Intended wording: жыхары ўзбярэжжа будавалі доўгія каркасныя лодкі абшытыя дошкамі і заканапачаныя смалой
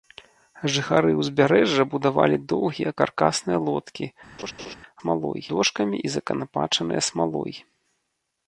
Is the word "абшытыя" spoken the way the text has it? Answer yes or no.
no